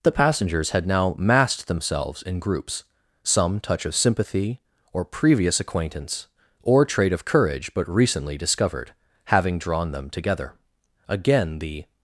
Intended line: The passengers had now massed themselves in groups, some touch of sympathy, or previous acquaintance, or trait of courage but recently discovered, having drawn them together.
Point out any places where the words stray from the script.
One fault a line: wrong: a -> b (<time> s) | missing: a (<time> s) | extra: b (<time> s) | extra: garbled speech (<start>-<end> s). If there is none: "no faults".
extra: Again the (11.1 s)